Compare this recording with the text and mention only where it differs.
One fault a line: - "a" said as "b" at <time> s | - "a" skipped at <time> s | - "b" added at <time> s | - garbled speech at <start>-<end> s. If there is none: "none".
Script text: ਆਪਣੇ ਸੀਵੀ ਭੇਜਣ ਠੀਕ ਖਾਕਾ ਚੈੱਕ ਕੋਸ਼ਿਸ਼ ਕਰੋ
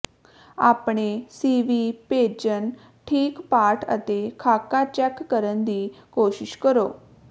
- "ਪਾਠ ਅਤੇ" added at 3.5 s
- "ਕਰਨ ਦੀ" added at 5.2 s